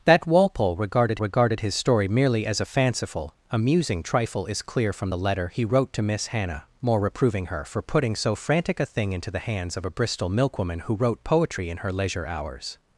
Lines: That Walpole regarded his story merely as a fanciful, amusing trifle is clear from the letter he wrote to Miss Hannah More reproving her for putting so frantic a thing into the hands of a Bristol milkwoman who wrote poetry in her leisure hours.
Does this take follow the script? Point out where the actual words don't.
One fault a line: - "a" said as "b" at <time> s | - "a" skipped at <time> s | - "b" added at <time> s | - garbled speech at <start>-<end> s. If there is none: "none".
- "regarded" added at 1.2 s